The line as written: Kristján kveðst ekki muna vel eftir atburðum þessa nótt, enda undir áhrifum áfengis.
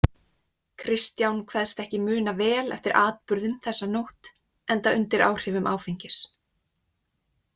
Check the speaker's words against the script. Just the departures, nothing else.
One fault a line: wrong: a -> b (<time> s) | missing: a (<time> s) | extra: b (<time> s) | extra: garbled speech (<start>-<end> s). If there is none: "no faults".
no faults